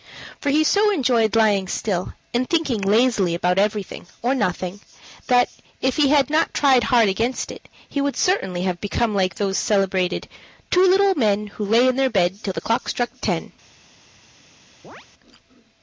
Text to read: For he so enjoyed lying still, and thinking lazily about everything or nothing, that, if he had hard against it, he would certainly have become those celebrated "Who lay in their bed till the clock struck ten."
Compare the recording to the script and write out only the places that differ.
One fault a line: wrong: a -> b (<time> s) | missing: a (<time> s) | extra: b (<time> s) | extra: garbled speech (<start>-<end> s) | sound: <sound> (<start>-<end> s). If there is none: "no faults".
extra: not tried (6.3 s)
extra: like (9.1 s)
extra: Two little men (10.7 s)
sound: chirp (14.8-15.1 s)